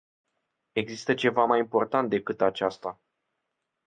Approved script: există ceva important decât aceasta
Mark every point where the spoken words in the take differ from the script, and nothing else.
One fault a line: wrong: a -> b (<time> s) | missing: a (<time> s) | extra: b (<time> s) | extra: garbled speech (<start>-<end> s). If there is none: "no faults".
extra: mai (1.4 s)